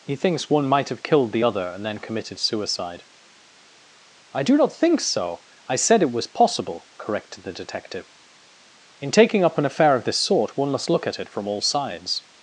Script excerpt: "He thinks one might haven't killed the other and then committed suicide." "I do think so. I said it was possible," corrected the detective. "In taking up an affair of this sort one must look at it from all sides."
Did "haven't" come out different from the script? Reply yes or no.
yes